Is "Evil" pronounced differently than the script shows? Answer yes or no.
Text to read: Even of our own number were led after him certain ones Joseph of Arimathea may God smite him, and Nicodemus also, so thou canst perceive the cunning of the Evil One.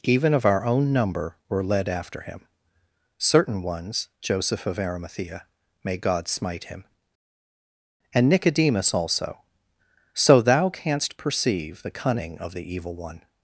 no